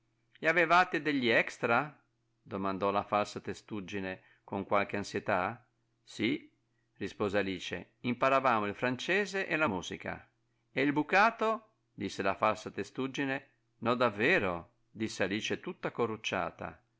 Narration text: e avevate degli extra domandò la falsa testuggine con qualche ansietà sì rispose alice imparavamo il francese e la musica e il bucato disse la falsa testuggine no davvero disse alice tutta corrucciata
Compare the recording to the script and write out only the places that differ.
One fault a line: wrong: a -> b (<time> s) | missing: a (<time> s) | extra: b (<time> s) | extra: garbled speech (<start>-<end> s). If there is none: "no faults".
no faults